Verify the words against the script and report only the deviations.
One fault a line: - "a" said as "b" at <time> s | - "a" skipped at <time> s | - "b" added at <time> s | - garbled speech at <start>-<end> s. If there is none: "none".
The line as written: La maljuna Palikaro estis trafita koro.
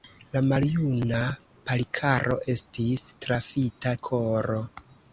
none